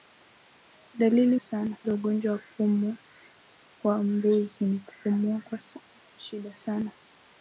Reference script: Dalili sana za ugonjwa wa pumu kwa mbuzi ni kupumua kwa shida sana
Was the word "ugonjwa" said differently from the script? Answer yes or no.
no